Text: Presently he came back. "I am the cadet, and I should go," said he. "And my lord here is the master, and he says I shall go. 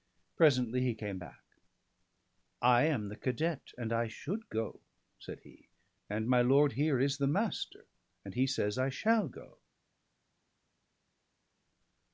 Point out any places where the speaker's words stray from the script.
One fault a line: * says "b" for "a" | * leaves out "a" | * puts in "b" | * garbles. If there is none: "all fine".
all fine